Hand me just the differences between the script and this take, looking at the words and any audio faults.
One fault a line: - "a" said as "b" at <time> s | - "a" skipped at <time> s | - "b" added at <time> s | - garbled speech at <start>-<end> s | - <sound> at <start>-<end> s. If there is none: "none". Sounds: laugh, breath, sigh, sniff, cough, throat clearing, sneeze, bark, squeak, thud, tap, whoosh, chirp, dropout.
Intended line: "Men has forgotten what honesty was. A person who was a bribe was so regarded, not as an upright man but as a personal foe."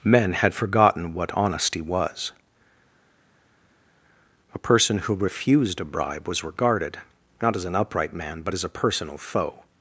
- "has" said as "had" at 0.3 s
- "was" said as "refused" at 5.1 s
- "so" skipped at 6.4 s